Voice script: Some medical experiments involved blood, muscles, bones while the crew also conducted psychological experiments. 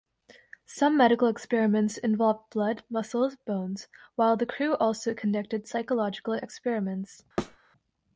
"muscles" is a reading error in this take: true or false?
false